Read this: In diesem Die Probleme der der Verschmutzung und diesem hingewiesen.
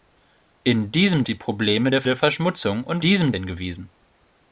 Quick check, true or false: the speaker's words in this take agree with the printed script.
true